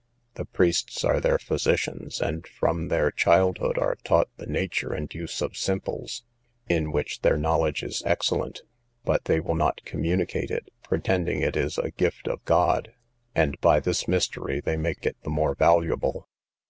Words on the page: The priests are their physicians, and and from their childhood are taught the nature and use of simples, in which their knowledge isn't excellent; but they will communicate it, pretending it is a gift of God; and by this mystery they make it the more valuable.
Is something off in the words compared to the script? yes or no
yes